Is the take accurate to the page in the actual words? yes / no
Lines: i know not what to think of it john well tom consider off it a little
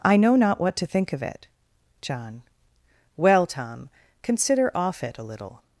yes